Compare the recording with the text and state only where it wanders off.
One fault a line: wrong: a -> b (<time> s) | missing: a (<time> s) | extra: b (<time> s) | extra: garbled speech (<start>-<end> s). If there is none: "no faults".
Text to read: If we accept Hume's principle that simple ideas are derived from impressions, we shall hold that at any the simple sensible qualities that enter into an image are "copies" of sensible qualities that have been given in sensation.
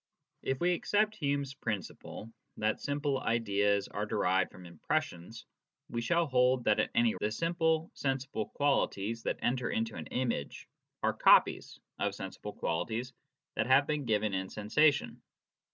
no faults